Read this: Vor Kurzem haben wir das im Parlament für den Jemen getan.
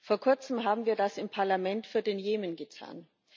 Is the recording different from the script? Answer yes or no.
no